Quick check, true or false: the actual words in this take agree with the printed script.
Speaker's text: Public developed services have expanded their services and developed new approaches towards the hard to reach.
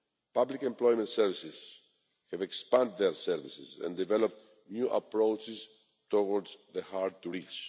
false